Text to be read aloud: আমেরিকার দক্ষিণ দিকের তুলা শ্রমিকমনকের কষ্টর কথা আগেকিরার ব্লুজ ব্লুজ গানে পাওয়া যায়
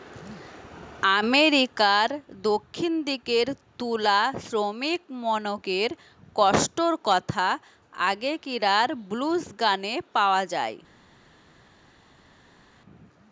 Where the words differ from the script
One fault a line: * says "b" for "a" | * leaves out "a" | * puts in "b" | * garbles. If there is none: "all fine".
* leaves out "ব্লুজ"